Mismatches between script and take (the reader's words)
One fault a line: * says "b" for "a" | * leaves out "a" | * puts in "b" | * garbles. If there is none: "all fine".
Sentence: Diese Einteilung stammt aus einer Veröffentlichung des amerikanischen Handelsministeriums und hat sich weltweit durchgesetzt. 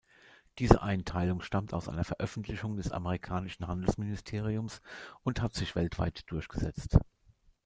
all fine